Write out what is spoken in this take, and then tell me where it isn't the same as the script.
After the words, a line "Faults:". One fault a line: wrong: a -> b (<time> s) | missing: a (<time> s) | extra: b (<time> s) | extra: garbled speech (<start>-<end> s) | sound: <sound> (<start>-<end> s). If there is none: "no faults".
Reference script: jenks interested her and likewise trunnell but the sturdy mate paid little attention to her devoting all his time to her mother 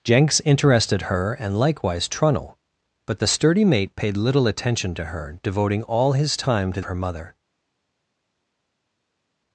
jenks interested her and likewise trunnell but the sturdy mate paid little attention to her devoting all his time to her mother
Faults:
no faults